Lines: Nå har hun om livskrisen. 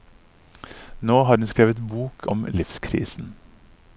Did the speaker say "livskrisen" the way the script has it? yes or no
yes